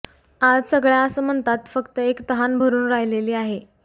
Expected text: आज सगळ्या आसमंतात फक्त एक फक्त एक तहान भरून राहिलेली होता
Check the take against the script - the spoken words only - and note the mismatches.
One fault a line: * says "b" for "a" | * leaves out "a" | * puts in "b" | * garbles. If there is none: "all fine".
* leaves out "फक्त एक"
* says "आहे" for "होता"